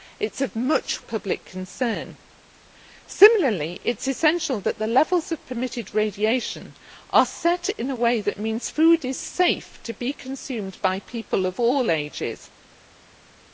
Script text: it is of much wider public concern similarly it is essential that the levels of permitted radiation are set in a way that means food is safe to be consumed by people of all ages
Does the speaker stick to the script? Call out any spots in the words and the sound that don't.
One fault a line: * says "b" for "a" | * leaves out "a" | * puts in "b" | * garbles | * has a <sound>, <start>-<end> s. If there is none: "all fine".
* leaves out "wider"